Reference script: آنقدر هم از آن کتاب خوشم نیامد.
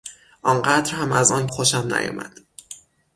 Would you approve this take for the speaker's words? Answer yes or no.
no